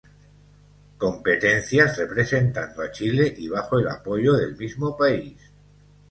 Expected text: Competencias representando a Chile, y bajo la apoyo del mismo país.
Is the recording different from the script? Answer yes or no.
yes